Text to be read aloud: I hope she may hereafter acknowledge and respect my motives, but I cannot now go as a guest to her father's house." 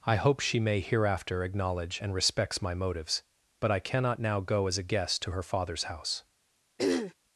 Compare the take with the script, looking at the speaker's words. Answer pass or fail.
fail